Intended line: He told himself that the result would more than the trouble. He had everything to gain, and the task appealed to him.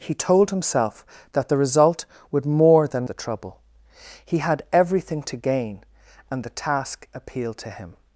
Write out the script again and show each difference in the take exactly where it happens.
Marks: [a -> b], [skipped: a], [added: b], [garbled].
He told himself that the result would more than the trouble. He had everything to gain, and the task appealed to him.